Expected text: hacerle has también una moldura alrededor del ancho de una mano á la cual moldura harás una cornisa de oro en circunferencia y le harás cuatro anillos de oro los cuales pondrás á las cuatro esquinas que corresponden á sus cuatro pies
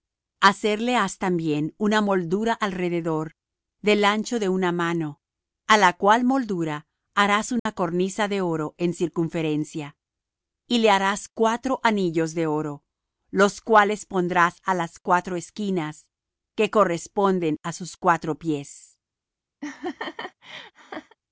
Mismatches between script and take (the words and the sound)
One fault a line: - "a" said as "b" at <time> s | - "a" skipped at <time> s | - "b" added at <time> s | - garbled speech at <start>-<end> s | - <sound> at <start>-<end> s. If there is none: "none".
- dropout at 7.6-7.7 s
- laugh at 19.6-21.2 s